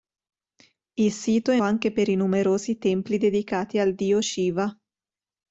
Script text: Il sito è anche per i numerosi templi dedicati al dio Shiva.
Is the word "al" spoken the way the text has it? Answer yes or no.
yes